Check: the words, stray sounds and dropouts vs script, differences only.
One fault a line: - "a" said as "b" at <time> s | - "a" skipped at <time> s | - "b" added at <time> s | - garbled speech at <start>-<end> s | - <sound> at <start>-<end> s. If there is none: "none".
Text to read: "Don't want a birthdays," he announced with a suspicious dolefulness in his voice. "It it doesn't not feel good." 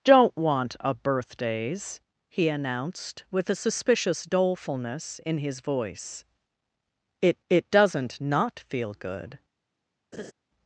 - laugh at 10.1-10.3 s